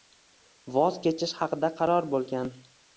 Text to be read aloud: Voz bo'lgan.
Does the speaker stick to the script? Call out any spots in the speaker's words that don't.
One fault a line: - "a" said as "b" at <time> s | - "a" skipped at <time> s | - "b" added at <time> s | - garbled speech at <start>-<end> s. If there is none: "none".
- "kechish haqida qaror" added at 1.1 s